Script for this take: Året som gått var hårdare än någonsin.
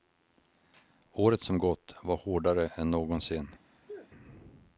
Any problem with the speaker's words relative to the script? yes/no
no